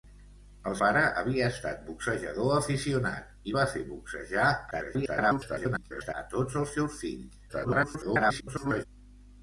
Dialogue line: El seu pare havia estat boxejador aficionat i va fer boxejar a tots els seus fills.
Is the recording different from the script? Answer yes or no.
yes